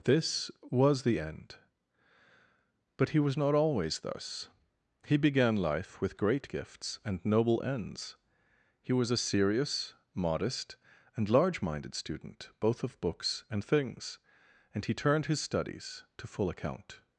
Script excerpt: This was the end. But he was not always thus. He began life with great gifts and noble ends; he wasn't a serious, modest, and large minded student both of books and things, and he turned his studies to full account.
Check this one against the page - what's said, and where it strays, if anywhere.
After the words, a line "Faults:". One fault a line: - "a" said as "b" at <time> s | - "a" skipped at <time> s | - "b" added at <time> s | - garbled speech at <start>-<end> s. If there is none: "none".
This was the end. But he was not always thus. He began life with great gifts and noble ends; he was a serious, modest, and large minded student both of books and things, and he turned his studies to full account.
Faults:
- "wasn't" said as "was" at 8.9 s